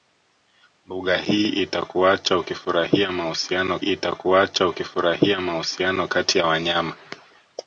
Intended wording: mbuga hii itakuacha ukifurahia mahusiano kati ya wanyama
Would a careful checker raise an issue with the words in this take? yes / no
yes